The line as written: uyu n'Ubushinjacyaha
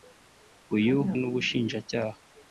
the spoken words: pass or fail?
pass